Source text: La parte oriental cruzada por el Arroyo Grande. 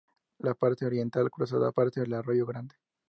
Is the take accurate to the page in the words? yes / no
no